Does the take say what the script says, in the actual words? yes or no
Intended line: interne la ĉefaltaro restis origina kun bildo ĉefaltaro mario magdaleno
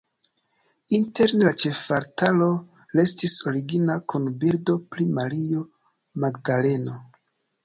no